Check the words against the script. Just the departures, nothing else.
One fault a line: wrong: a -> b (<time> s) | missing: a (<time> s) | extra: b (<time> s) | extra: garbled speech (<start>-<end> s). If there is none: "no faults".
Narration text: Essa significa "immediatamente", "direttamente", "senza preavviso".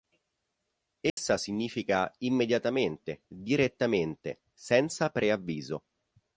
no faults